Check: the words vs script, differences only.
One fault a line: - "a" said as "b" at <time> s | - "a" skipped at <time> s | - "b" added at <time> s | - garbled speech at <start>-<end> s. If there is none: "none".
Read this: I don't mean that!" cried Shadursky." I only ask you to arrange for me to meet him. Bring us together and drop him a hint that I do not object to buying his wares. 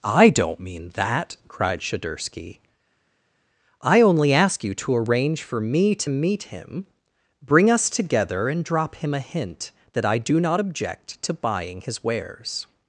none